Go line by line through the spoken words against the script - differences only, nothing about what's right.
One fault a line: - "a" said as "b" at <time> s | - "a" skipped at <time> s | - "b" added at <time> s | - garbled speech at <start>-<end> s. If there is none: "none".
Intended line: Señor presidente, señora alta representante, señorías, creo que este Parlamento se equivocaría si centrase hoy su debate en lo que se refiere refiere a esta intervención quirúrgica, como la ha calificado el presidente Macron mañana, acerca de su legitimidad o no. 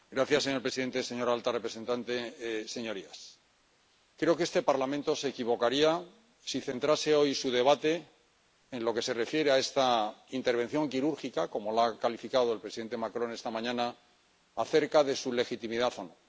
- "refiere" skipped at 9.5 s
- "esta" added at 13.3 s